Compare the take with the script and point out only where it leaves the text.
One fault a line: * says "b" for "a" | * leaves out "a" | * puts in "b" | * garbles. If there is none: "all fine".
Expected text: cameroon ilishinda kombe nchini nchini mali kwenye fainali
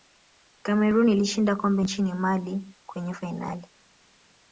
* leaves out "nchini"